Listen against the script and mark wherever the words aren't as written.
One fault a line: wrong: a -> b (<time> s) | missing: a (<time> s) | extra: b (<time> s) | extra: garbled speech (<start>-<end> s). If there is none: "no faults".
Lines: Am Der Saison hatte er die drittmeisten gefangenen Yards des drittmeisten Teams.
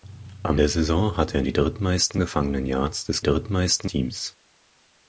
no faults